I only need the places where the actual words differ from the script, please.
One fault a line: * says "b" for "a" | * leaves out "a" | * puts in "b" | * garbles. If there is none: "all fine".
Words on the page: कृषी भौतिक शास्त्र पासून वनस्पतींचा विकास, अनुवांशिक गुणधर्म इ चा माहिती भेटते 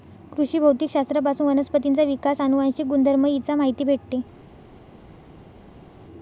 all fine